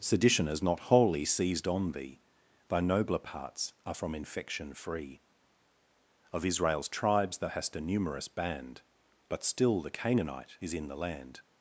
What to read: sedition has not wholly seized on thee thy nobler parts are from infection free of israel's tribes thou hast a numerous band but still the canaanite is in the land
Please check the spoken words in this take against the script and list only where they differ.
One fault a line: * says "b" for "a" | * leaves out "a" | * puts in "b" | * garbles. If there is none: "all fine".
all fine